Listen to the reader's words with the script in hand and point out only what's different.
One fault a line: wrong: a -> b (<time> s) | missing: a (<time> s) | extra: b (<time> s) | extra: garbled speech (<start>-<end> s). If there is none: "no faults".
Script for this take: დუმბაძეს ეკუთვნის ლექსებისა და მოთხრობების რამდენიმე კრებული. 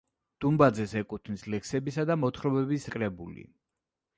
missing: რამდენიმე (2.9 s)